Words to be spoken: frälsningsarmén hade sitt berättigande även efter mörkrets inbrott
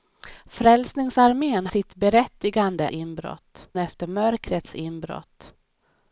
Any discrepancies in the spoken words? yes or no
yes